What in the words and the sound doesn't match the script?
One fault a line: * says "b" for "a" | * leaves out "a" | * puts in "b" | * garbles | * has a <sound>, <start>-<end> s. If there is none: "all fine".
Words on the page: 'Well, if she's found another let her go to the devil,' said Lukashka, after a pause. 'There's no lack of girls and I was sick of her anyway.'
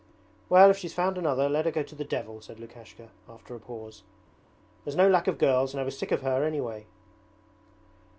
all fine